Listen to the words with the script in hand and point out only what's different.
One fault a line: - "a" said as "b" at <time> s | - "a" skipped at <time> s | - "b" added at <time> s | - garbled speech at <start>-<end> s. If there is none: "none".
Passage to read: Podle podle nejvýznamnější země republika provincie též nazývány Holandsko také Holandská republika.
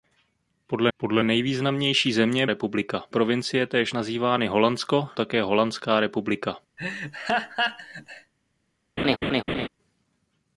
none